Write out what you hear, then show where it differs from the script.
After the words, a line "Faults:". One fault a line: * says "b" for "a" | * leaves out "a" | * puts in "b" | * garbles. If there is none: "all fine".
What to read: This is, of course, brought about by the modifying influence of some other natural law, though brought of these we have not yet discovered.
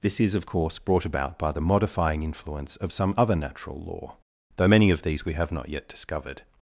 This is, of course, brought about by the modifying influence of some other natural law, though many of these we have not yet discovered.
Faults:
* says "many" for "brought"